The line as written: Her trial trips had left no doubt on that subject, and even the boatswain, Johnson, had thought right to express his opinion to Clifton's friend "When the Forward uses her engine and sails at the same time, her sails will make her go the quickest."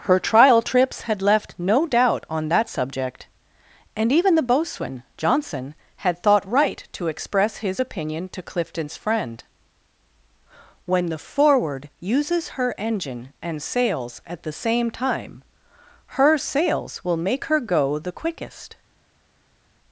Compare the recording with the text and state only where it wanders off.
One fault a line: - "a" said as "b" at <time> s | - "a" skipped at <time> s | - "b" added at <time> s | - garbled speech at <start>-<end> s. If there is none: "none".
none